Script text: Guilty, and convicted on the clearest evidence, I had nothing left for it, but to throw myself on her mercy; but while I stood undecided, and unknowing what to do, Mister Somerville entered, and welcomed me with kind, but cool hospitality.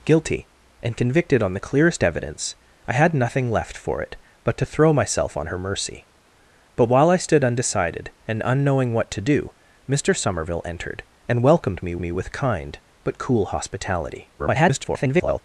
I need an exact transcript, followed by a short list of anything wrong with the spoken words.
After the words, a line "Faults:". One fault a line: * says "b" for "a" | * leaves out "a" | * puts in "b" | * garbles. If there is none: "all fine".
Guilty, and convicted on the clearest evidence, I had nothing left for it, but to throw myself on her mercy; but while I stood undecided, and unknowing what to do, Mister Somerville entered, and welcomed me me with kind, but cool hospitality. [garbled]
Faults:
* puts in "me"
* garbles